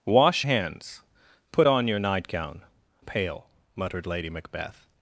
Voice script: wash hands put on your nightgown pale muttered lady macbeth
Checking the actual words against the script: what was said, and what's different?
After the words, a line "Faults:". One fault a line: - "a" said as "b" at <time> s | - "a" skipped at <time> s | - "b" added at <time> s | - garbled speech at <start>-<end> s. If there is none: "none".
wash hands put on your nightgown pale muttered lady macbeth
Faults:
none